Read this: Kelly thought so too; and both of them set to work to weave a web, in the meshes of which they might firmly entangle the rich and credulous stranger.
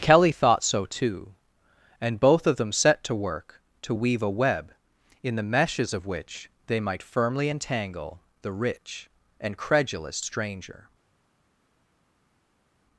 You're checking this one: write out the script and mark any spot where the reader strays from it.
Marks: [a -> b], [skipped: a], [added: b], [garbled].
Kelly thought so too; and both of them set to work to weave a web, in the meshes of which they might firmly entangle the rich and credulous stranger.